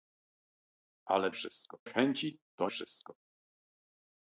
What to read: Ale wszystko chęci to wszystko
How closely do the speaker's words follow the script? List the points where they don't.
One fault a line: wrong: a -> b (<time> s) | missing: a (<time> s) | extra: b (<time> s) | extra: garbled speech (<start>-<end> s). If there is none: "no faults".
no faults